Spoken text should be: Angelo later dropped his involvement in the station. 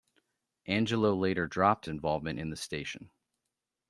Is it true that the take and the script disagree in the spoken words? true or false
true